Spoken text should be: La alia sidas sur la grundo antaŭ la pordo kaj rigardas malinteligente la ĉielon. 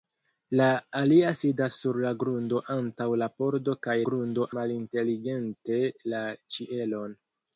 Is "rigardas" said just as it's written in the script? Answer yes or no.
no